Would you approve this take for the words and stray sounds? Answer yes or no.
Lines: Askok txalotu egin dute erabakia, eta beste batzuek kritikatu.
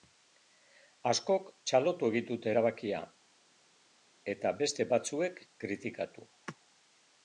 yes